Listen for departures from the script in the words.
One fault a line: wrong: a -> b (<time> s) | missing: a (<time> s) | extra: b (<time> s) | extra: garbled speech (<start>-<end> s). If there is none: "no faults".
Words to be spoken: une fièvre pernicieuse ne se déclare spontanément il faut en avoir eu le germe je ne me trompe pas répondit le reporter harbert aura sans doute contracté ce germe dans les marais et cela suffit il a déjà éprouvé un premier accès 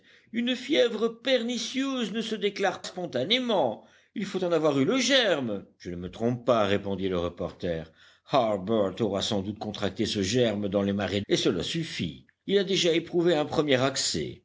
no faults